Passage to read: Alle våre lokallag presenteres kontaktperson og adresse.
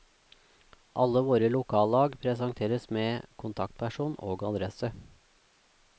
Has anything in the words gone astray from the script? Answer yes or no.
yes